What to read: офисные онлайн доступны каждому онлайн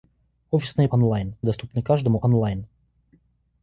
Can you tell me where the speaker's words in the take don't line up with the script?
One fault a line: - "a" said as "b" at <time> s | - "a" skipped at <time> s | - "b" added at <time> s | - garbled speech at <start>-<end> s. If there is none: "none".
none